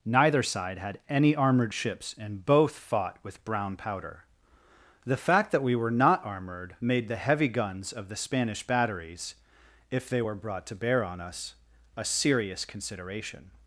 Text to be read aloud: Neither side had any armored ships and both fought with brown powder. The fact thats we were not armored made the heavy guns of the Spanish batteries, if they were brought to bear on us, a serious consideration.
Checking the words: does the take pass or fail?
fail